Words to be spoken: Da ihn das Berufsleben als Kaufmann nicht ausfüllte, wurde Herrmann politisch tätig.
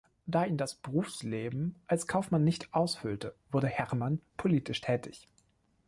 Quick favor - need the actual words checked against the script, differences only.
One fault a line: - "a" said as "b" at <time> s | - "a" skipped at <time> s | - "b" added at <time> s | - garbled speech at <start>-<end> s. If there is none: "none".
none